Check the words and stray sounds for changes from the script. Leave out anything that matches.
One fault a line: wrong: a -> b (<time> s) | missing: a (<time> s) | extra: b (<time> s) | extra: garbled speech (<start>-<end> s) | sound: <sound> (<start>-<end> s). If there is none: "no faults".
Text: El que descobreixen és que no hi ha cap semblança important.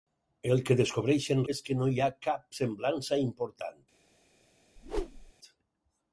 sound: whoosh (4.8-5.3 s)